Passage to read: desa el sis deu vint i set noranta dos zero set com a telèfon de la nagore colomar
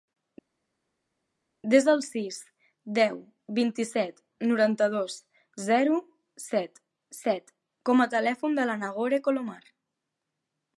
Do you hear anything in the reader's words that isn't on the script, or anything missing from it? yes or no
yes